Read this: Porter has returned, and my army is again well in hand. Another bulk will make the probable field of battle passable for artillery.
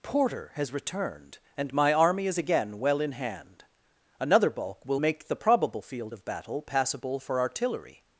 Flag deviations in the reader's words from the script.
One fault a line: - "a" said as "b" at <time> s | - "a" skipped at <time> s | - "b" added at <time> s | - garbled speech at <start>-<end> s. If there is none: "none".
none